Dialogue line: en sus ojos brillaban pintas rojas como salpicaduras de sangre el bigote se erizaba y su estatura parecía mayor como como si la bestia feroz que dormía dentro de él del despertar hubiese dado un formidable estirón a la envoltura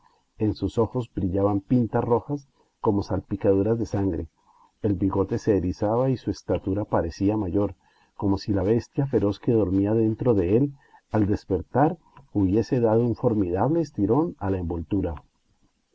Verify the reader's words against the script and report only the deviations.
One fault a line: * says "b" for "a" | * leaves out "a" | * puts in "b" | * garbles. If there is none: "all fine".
* leaves out "como"
* says "al" for "del"